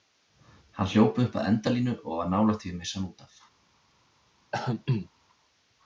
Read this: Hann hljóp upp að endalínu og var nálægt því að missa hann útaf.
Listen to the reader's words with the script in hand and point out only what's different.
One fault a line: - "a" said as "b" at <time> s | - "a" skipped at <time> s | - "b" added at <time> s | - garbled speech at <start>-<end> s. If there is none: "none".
none